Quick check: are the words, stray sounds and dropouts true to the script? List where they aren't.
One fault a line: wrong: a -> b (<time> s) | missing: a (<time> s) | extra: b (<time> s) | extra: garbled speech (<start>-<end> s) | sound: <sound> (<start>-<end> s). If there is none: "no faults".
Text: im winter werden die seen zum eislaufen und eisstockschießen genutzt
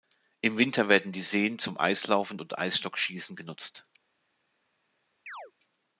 sound: chirp (5.3-5.5 s)